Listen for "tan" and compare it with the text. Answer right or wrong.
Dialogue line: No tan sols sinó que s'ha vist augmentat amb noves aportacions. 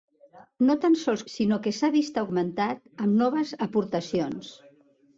right